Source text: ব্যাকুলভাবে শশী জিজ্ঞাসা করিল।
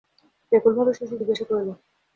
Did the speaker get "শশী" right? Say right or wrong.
right